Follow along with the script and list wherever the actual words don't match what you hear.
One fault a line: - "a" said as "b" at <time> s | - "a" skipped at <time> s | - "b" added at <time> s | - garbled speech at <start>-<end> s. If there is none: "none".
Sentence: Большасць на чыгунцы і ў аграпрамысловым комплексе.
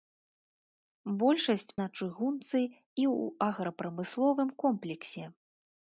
none